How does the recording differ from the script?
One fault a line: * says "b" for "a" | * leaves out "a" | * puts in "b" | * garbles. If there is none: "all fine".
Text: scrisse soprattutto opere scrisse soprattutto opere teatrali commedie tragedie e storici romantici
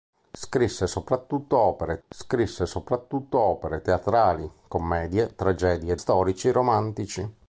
all fine